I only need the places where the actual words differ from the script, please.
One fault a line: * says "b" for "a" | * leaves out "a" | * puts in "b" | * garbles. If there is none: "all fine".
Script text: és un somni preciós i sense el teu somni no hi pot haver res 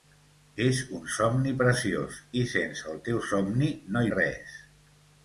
* leaves out "hi pot haver"